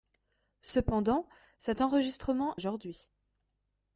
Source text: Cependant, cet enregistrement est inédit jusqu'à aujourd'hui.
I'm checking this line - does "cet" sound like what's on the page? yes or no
yes